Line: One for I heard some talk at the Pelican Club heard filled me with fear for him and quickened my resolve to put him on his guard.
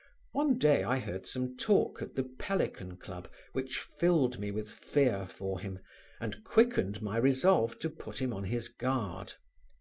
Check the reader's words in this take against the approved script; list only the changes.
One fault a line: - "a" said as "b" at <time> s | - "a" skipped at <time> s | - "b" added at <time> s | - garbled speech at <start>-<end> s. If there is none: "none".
- "for" said as "day" at 0.6 s
- "heard" said as "which" at 3.5 s